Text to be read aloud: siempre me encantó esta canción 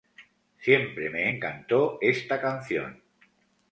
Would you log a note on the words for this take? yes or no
no